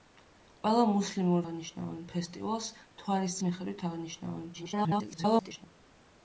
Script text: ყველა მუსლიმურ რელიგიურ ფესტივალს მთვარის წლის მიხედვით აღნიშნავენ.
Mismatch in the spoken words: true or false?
true